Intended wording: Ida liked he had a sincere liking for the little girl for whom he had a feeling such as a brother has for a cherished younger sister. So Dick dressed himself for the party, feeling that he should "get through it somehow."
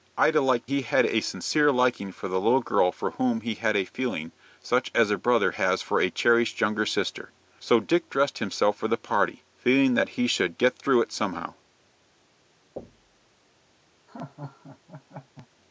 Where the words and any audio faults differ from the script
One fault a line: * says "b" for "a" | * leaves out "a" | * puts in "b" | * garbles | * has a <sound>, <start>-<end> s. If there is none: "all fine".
* has a thud, 12.8-13.3 s
* has a laugh, 14.1-15.5 s